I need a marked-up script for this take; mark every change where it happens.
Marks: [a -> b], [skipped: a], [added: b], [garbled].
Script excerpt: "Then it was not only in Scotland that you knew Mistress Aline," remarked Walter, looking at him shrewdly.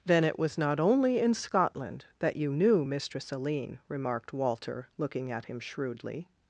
"Then it was not only in Scotland that you knew Mistress Aline," remarked Walter, looking at him shrewdly.